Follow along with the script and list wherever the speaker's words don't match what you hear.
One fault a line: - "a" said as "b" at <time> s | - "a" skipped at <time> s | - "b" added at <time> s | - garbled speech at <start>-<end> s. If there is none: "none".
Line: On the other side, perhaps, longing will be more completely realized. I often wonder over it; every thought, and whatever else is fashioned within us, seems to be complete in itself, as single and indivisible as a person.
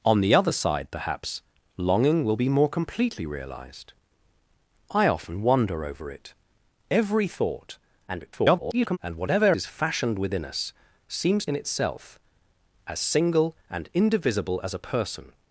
- garbled speech at 8.1-9.0 s
- "else" skipped at 9.6 s
- "to be complete" skipped at 11.5 s